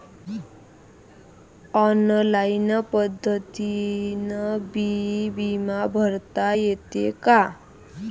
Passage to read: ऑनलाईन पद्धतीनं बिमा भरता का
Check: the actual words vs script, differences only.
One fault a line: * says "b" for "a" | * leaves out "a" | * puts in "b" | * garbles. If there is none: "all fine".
* puts in "बी"
* puts in "येते"